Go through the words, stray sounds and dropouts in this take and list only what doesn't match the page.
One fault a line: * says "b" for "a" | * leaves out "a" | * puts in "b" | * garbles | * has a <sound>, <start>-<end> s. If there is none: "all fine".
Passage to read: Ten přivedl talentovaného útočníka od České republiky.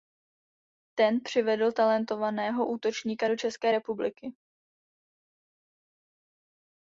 * says "do" for "od"